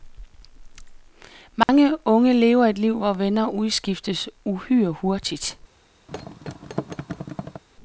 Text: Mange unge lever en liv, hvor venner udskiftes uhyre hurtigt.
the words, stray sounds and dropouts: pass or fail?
fail